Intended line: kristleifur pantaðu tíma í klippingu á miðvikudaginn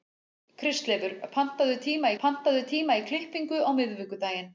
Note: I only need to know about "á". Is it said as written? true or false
true